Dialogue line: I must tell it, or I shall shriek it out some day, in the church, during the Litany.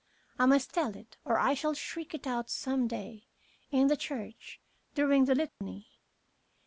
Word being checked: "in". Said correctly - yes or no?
yes